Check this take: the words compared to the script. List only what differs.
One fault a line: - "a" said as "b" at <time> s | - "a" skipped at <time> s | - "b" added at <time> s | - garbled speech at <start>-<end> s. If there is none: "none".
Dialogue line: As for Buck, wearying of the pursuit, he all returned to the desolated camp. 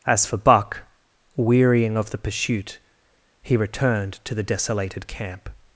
- "all" skipped at 3.5 s